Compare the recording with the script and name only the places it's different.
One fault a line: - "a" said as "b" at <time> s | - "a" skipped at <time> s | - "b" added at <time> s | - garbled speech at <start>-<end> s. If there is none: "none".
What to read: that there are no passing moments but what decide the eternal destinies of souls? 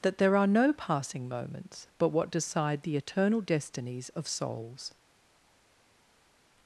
none